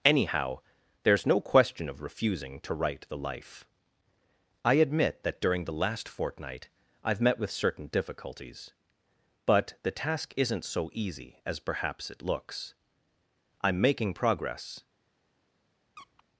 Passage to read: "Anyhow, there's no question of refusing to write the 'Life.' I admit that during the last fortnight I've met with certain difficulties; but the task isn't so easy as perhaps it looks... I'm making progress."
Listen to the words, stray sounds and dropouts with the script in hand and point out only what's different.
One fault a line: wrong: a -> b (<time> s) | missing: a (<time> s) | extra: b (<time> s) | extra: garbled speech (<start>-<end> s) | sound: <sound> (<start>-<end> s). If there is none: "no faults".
sound: squeak (16.0-16.2 s)